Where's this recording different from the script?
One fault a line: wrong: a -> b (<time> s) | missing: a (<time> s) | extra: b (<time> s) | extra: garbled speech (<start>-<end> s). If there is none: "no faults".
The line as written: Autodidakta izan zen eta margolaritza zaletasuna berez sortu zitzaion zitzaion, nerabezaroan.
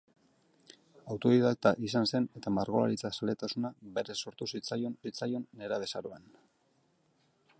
no faults